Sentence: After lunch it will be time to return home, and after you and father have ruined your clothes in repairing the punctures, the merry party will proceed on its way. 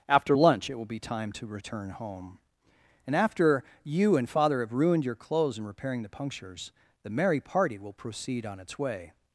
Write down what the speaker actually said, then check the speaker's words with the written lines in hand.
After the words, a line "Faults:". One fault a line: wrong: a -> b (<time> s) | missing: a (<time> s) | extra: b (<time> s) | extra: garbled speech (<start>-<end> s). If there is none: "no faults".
After lunch it will be time to return home, and after you and father have ruined your clothes in repairing the punctures, the merry party will proceed on its way.
Faults:
no faults